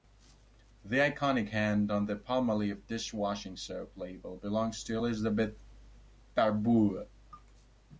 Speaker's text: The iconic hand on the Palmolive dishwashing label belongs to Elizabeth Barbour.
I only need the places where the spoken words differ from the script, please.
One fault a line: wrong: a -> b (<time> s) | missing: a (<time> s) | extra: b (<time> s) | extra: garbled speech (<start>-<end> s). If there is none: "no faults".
extra: soap (3.5 s)